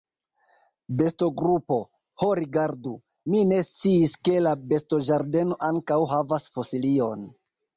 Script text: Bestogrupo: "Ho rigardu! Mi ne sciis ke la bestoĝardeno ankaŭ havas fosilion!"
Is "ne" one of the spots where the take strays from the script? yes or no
no